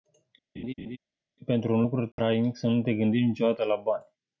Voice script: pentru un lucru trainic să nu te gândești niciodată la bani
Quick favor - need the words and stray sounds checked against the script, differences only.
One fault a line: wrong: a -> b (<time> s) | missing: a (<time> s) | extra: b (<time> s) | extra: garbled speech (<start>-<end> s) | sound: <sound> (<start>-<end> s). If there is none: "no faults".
sound: laugh (0.6-1.0 s)
sound: dropout (2.1-2.2 s)